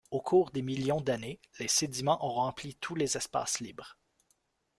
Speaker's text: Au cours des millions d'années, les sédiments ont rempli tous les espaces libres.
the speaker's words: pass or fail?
pass